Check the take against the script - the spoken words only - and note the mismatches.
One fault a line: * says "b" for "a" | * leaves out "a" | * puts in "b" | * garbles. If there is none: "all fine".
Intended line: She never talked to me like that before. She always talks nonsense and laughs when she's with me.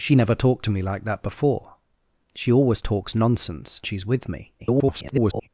* leaves out "and laughs when"
* garbles